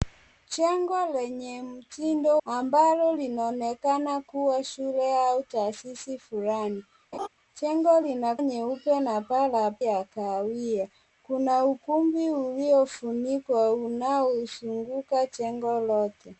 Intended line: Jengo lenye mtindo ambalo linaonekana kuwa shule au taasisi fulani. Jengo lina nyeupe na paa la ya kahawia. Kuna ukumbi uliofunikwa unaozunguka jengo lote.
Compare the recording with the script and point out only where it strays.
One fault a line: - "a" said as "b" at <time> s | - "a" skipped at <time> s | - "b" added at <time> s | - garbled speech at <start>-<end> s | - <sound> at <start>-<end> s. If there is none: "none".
- laugh at 7.1-7.3 s